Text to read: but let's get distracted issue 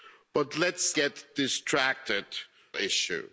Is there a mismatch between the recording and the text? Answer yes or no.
no